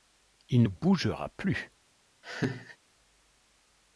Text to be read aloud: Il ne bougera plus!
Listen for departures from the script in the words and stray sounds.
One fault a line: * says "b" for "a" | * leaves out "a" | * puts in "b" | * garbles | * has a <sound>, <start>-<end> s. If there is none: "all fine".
* has a laugh, 2.2-2.8 s